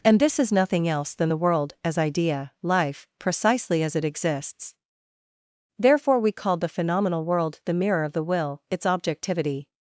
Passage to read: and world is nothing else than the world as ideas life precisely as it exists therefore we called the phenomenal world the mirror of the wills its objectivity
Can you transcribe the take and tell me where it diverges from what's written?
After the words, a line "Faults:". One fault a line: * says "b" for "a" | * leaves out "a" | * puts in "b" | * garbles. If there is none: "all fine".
and this is nothing else than the world as idea life precisely as it exists therefore we called the phenomenal world the mirror of the will its objectivity
Faults:
* says "this" for "world"
* says "idea" for "ideas"
* says "will" for "wills"